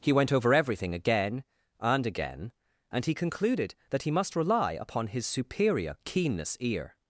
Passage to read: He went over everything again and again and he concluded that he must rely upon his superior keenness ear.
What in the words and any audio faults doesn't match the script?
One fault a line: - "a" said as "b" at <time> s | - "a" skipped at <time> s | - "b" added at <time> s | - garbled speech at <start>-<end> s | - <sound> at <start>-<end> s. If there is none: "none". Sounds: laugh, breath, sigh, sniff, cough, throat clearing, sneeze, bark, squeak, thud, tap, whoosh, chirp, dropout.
none